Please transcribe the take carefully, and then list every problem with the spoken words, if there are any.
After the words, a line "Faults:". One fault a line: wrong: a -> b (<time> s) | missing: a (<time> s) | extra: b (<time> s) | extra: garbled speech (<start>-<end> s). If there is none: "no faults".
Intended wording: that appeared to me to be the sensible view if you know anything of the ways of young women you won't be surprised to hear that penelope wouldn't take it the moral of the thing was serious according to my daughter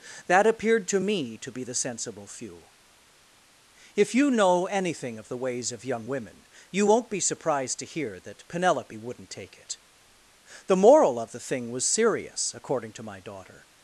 that appeared to me to be the sensible few if you know anything of the ways of young women you won't be surprised to hear that penelope wouldn't take it the moral of the thing was serious according to my daughter
Faults:
wrong: view -> few (2.3 s)